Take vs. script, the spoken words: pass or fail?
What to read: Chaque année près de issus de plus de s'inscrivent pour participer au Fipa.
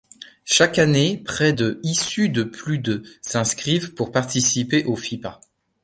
pass